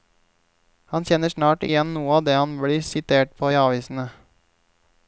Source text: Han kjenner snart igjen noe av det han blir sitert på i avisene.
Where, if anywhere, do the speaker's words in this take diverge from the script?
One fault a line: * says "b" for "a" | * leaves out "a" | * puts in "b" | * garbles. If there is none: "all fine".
all fine